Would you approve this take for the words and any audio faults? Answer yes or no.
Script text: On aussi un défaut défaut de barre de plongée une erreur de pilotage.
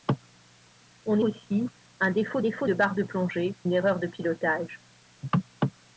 yes